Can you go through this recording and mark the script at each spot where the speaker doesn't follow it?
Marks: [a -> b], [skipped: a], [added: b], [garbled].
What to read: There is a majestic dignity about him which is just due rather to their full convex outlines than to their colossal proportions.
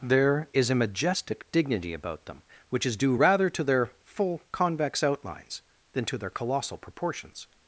There is a majestic dignity about [him -> them] which is [skipped: just] due rather to their full convex outlines than to their colossal proportions.